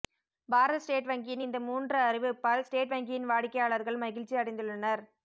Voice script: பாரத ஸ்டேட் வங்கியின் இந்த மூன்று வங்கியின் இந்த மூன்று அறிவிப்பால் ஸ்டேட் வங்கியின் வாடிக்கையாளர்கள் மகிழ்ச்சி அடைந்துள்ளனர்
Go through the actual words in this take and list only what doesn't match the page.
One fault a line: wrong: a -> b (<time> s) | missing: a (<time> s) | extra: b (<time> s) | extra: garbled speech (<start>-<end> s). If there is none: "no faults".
missing: வங்கியின் இந்த மூன்று (2.0 s)